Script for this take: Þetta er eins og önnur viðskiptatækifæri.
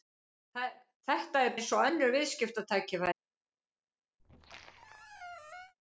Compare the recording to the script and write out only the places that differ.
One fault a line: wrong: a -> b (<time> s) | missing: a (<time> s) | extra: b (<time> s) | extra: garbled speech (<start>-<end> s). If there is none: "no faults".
no faults